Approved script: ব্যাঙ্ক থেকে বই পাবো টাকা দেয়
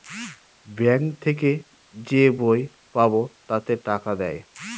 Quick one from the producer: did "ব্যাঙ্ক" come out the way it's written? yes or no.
yes